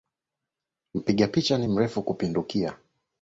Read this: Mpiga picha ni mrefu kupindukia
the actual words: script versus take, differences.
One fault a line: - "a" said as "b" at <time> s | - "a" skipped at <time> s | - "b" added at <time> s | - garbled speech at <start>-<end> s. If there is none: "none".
none